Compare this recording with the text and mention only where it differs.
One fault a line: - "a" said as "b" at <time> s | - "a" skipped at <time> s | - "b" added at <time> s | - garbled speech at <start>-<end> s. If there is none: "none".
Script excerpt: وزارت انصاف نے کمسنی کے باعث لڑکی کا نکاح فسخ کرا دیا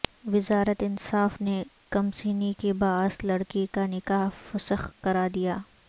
none